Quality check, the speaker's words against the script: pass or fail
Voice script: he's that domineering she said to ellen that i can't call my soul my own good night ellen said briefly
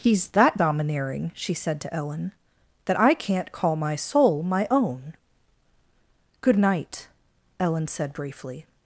pass